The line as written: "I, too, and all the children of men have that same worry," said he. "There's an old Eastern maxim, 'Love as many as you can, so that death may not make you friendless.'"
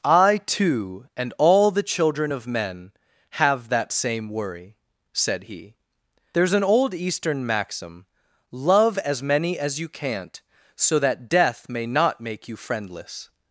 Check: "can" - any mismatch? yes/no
yes